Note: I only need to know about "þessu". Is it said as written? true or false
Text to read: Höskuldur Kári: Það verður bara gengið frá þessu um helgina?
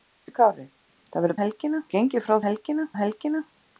false